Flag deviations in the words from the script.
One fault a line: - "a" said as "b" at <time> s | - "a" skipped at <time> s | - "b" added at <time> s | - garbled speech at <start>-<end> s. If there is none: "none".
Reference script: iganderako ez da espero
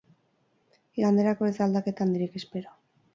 - "aldaketa handirik" added at 1.7 s